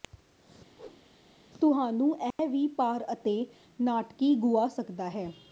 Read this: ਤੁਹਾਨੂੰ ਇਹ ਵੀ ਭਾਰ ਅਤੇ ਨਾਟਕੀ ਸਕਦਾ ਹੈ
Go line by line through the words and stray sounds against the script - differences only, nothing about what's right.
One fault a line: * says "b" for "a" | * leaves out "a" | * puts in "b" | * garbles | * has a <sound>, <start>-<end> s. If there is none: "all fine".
* has a whoosh, 0.7-1.1 s
* has a dropout, 2.3-2.4 s
* puts in "ਗੁਆ"